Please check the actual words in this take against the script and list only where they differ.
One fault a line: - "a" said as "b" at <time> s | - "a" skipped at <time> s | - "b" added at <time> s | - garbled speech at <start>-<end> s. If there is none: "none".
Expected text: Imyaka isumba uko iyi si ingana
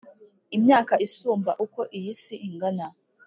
none